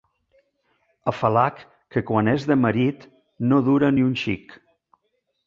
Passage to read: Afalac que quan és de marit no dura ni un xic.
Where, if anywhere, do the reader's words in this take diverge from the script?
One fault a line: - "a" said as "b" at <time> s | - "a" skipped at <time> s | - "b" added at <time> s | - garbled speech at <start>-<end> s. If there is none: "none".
none